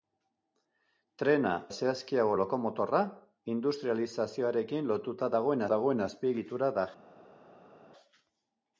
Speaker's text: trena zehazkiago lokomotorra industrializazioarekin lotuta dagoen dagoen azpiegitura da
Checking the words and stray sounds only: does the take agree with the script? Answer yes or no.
yes